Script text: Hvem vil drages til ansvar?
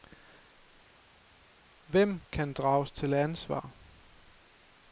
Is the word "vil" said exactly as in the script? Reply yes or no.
no